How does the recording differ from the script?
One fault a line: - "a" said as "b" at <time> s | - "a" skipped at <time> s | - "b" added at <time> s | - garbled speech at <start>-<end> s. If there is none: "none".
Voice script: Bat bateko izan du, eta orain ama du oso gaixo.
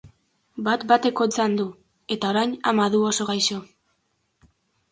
none